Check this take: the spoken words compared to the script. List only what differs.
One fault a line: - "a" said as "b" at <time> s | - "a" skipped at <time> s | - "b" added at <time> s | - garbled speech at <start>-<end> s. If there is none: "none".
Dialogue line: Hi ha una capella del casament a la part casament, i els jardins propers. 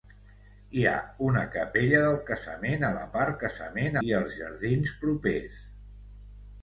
none